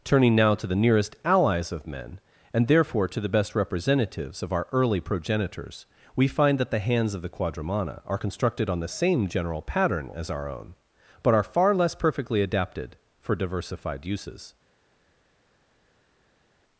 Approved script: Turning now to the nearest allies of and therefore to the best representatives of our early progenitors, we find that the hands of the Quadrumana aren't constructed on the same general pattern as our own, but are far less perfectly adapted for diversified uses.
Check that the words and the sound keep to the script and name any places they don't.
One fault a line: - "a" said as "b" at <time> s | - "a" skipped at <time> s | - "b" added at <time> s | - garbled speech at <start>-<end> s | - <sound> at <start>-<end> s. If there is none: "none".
- "men" added at 1.9 s
- "aren't" said as "are" at 8.1 s